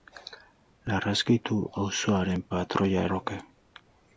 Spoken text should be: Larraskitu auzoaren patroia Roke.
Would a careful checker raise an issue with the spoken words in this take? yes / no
no